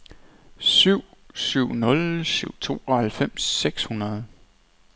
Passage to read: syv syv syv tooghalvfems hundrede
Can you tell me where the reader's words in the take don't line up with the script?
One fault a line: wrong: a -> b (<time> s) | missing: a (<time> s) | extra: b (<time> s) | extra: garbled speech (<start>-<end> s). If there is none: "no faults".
extra: nul (1.8 s)
extra: seks (3.4 s)